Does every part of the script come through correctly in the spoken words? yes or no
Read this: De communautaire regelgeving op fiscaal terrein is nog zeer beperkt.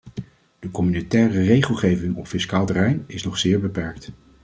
yes